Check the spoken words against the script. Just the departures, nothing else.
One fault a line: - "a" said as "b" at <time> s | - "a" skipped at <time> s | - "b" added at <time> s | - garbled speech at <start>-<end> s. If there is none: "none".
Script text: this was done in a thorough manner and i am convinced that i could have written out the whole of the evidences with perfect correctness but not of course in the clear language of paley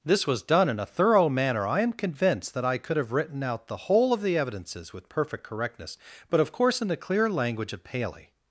- "and" skipped at 1.7 s
- "not" skipped at 6.4 s